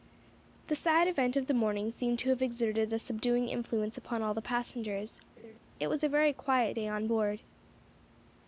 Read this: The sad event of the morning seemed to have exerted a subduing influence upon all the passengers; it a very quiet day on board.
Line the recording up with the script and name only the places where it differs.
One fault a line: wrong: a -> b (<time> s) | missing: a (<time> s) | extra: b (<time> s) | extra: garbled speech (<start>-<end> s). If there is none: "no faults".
extra: was (5.9 s)